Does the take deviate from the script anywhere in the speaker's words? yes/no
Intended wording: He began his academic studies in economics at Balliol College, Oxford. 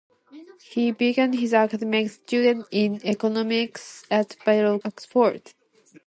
yes